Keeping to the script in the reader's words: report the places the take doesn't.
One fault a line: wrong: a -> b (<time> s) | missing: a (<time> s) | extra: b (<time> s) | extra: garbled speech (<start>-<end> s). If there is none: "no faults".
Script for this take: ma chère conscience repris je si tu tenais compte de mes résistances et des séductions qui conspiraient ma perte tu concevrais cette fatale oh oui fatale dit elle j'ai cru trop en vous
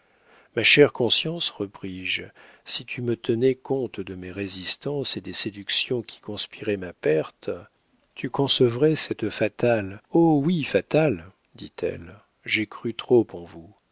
extra: me (3.0 s)